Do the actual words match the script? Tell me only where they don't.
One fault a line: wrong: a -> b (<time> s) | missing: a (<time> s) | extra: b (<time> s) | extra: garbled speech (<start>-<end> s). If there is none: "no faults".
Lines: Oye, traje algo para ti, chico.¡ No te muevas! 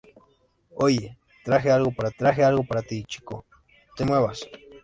extra: traje algo para (2.2 s)
missing: No (3.4 s)